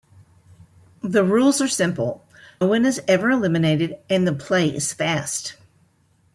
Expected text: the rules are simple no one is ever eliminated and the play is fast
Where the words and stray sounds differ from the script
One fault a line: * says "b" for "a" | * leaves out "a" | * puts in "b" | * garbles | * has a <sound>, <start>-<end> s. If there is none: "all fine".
* leaves out "no"